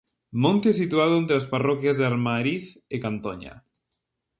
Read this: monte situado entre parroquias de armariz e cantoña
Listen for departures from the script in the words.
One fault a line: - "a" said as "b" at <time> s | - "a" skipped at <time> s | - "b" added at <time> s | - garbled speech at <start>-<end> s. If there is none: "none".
- "as" added at 1.4 s